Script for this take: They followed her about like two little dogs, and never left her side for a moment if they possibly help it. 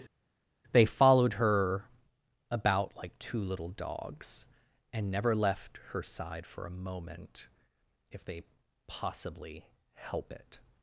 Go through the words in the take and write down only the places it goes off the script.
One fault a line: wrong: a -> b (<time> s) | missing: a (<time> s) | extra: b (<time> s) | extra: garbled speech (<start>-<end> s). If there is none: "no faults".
no faults